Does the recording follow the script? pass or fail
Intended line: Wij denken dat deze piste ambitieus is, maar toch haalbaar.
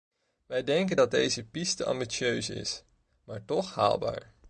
pass